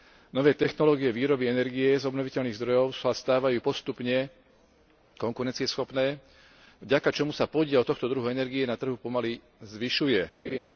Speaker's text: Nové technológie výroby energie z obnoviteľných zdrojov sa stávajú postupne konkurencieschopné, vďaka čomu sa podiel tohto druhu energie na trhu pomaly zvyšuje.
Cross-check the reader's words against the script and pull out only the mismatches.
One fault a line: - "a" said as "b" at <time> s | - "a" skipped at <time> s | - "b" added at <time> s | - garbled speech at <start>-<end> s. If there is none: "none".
none